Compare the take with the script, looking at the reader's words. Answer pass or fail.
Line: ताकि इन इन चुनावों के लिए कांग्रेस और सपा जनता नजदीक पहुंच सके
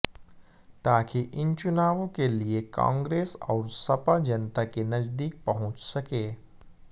fail